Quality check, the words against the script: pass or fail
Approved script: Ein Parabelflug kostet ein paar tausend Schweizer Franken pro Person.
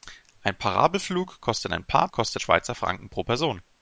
fail